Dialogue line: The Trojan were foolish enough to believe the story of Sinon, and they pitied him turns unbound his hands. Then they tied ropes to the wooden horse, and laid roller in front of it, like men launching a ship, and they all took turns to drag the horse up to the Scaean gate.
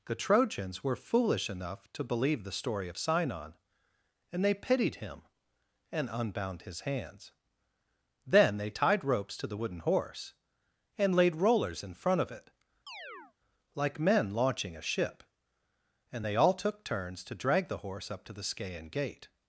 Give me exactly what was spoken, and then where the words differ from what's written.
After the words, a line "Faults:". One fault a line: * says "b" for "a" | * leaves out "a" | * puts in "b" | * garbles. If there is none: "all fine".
The Trojans were foolish enough to believe the story of Sinon, and they pitied him and unbound his hands. Then they tied ropes to the wooden horse, and laid rollers in front of it, like men launching a ship, and they all took turns to drag the horse up to the Scaean gate.
Faults:
* says "Trojans" for "Trojan"
* says "and" for "turns"
* says "rollers" for "roller"